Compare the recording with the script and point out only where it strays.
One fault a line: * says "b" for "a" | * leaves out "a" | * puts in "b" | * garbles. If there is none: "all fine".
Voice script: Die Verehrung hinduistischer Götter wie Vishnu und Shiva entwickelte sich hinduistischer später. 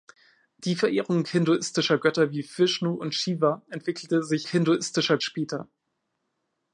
all fine